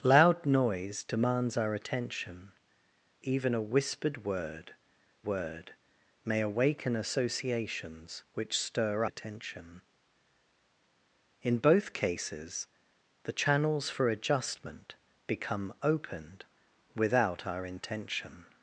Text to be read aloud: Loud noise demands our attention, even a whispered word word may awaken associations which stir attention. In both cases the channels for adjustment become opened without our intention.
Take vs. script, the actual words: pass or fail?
pass